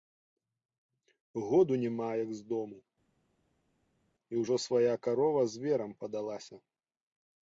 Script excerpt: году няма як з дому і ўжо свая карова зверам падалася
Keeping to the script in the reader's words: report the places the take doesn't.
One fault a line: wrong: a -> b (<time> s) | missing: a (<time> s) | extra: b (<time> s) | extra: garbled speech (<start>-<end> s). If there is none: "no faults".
no faults